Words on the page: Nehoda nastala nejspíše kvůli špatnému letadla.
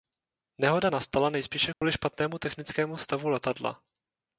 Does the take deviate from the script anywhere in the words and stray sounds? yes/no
yes